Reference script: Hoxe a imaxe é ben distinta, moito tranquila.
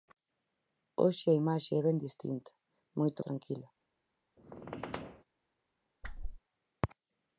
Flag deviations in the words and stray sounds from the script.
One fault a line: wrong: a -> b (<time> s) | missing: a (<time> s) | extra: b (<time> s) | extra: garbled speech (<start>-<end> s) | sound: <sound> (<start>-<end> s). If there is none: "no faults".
sound: squeak (4.4-5.2 s)
sound: whoosh (6.0-6.4 s)